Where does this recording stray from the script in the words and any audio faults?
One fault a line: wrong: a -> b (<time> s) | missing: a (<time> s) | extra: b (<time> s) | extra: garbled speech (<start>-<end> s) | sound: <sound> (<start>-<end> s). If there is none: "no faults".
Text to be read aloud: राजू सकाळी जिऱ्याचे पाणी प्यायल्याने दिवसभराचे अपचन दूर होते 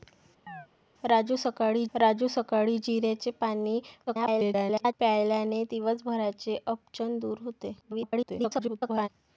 sound: chirp (0.5-0.7 s)
extra: राजू सकाळी (1.9 s)
extra: garbled speech (4.1-4.9 s)
extra: garbled speech (7.8-9.1 s)